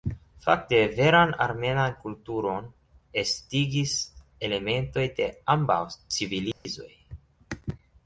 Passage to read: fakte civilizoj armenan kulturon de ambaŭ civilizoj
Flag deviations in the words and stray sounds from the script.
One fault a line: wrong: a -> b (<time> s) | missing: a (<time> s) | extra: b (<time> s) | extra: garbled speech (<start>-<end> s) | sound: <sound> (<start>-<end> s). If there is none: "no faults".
wrong: civilizoj -> veran (1.0 s)
extra: estigis elementoj (3.2 s)
sound: dropout (6.5-6.7 s)